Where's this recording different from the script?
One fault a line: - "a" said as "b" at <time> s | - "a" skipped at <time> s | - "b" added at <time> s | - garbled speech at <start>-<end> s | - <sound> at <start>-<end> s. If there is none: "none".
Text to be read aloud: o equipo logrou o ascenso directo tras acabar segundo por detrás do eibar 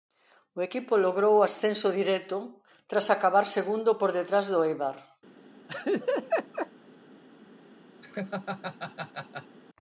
- laugh at 5.7-6.7 s
- laugh at 8.0-9.6 s